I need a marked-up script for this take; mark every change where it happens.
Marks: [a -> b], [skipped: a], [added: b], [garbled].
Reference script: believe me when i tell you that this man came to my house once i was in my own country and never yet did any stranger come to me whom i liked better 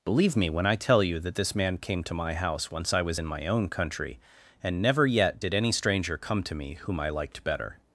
believe me when i tell you that this man came to my house once i was in my own country and never yet did any stranger come to me whom i liked better